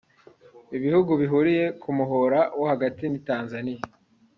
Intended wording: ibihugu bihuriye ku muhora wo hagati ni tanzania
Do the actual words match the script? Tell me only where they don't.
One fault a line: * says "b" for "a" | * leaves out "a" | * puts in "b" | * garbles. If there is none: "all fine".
all fine